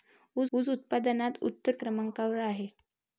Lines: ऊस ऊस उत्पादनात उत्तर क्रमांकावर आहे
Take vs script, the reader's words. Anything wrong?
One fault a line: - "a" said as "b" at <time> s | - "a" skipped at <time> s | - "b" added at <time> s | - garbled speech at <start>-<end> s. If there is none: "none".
none